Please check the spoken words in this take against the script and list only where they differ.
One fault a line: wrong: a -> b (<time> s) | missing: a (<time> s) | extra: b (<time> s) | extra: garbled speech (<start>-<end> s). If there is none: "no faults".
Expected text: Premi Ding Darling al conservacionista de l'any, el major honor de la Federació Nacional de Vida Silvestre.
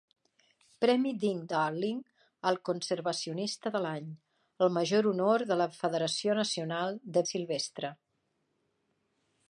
missing: Vida (7.2 s)